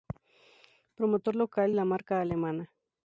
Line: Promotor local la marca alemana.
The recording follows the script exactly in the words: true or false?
true